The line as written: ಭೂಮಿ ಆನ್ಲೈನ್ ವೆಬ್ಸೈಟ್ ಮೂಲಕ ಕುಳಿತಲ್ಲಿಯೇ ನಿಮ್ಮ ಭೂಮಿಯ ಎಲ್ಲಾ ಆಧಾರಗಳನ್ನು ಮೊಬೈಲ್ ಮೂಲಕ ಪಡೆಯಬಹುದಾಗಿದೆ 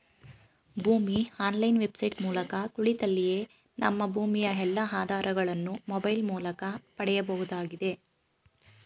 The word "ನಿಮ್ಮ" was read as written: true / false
false